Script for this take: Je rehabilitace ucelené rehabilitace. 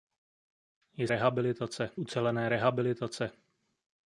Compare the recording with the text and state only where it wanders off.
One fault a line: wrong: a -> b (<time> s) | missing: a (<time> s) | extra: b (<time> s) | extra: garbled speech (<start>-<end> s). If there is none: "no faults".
no faults